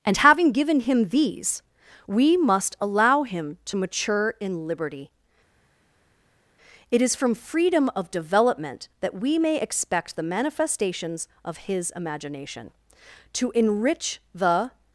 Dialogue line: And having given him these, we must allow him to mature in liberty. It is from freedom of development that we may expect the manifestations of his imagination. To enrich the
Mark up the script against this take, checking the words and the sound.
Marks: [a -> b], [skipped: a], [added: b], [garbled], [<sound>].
And having given him these, we must allow him to mature in liberty. It is from freedom of development that we may expect the manifestations of his imagination. To enrich the